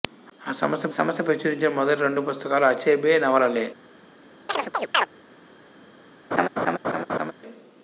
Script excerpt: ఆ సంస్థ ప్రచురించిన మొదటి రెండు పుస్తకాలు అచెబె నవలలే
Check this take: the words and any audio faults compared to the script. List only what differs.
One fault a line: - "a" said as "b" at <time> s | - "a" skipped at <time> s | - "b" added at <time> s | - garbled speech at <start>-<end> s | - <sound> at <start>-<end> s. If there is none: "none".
- "సంస్థ" added at 0.9 s
- chirp at 4.5-5.1 s
- laugh at 6.3-7.3 s